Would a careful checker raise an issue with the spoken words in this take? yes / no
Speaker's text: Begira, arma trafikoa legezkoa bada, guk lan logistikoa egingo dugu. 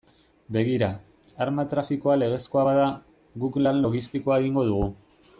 no